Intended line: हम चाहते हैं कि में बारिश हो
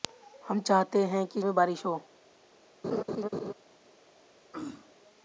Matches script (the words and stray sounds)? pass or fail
fail